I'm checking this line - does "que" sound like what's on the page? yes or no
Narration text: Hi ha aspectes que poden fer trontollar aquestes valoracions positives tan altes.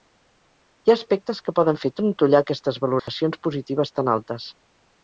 yes